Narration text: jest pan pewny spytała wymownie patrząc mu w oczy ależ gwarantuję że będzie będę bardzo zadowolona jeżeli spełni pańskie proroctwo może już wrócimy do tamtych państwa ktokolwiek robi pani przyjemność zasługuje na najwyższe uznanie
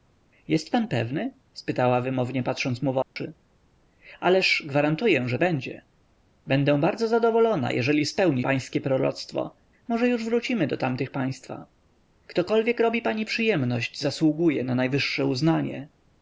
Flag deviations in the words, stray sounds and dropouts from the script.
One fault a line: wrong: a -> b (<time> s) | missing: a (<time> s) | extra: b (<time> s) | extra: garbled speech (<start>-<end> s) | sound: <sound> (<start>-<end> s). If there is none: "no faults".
sound: dropout (3.0-3.2 s)